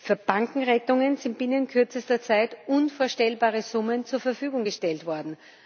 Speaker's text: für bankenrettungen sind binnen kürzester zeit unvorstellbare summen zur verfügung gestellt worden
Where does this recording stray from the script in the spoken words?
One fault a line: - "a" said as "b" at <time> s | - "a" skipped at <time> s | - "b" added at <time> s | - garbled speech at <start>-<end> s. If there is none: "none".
none